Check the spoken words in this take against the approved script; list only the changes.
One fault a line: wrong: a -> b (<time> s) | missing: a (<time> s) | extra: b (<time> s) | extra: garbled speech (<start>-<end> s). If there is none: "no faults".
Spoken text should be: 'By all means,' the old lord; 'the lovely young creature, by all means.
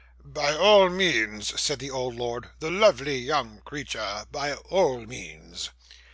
extra: said (1.6 s)